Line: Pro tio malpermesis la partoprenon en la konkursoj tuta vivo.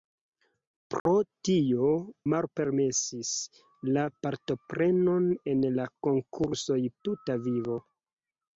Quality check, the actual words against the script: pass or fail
pass